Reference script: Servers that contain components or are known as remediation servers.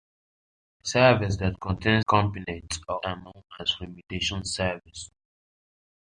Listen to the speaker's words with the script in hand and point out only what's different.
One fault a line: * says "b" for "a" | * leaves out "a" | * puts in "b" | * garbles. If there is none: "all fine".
all fine